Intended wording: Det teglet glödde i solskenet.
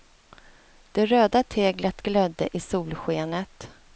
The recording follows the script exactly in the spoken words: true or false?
false